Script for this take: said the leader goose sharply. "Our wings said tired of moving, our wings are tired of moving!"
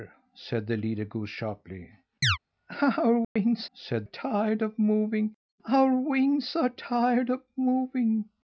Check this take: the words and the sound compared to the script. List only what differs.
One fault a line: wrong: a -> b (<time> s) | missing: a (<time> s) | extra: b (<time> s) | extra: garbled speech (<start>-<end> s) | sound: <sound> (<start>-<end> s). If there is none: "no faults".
sound: chirp (2.2-2.4 s)
sound: dropout (3.2-3.4 s)